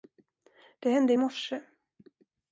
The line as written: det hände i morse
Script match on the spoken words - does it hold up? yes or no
yes